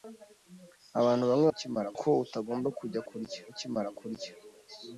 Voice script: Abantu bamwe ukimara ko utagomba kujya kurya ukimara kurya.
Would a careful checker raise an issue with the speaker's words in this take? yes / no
no